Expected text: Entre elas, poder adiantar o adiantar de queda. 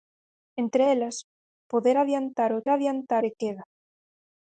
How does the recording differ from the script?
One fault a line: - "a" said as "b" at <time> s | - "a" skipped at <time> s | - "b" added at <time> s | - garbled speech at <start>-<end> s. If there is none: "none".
none